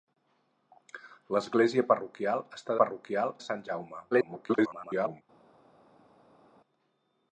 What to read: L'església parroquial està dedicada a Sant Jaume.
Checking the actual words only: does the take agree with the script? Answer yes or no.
no